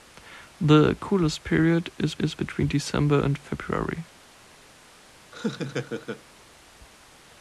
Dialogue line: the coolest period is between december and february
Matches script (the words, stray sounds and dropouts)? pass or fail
fail